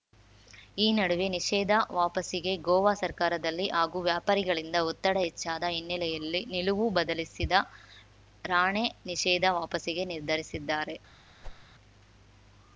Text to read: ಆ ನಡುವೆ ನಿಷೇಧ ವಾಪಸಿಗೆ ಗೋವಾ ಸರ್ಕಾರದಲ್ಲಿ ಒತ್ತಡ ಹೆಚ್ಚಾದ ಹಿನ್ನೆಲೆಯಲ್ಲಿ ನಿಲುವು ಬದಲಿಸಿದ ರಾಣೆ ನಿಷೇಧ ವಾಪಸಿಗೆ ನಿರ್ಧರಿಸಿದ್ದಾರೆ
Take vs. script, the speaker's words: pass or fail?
fail